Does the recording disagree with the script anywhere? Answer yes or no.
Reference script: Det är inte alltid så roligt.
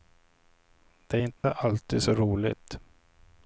no